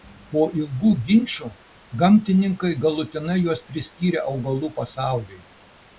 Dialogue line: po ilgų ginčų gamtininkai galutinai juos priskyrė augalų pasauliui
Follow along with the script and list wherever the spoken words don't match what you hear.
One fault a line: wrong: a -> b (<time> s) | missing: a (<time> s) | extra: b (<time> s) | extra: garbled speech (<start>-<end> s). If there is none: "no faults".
no faults